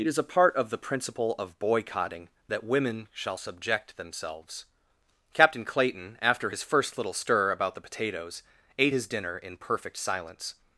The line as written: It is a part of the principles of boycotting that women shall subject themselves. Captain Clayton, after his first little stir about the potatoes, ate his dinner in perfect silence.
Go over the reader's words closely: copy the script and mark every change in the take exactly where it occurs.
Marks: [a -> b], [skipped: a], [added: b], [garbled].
It is a part of the [principles -> principle] of boycotting that women shall subject themselves. Captain Clayton, after his first little stir about the potatoes, ate his dinner in perfect silence.